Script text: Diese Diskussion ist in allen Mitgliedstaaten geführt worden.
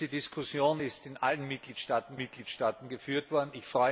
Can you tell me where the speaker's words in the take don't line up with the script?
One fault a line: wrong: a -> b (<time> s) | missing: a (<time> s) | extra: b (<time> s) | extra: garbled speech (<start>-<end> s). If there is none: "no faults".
extra: Mitgliedstaaten (2.1 s)